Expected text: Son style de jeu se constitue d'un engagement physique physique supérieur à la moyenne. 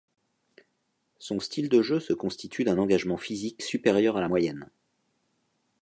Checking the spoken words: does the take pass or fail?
fail